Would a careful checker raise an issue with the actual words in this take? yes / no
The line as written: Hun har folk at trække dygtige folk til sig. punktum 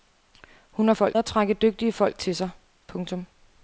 no